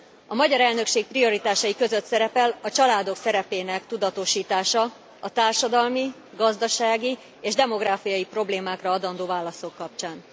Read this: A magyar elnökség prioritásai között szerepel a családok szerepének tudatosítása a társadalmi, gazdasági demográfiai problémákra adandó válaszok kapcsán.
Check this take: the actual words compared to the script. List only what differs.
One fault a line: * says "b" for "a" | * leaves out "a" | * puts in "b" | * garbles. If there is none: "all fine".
* puts in "és"